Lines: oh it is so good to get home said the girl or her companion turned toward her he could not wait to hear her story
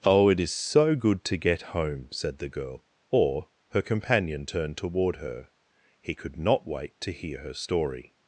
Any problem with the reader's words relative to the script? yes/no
no